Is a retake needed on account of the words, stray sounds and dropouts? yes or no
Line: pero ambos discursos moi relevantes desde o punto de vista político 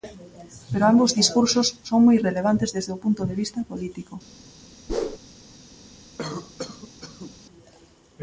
yes